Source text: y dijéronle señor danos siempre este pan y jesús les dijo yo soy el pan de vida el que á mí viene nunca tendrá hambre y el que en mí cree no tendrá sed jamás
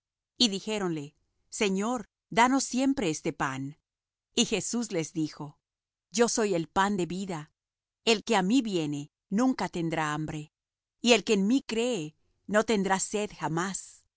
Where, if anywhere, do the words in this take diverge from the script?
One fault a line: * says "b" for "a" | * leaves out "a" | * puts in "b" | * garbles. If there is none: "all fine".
all fine